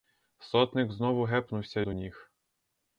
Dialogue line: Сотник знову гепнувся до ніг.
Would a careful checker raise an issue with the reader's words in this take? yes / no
no